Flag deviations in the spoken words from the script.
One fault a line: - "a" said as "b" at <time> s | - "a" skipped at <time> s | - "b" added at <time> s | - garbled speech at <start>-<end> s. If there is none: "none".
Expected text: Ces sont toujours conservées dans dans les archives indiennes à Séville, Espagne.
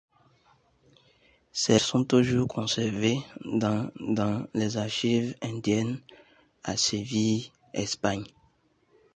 none